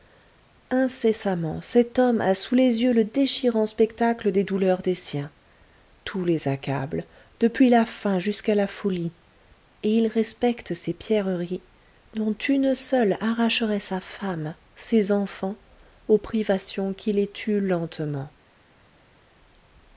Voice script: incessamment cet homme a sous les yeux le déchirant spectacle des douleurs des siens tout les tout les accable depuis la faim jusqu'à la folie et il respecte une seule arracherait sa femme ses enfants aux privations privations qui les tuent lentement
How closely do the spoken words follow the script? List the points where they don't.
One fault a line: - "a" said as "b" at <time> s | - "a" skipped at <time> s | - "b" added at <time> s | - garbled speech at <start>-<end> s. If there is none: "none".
- "tout les" skipped at 6.5 s
- "ces pierreries dont" added at 10.7 s
- "privations" skipped at 16.9 s